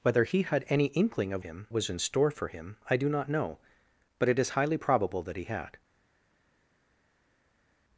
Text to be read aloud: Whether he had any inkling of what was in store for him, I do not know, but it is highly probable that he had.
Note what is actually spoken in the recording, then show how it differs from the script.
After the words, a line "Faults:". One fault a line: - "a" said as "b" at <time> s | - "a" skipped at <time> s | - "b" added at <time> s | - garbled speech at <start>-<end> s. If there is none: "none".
Whether he had any inkling of him was in store for him, I do not know, but it is highly probable that he had.
Faults:
- "what" said as "him" at 1.4 s